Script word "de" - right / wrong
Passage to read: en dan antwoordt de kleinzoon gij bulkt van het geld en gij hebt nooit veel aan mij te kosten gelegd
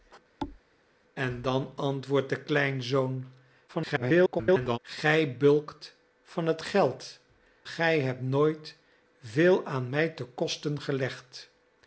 right